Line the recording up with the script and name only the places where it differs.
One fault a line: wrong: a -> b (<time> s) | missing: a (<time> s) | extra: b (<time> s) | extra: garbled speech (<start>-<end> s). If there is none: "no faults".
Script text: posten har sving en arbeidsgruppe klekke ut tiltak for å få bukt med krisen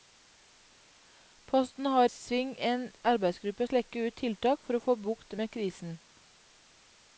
no faults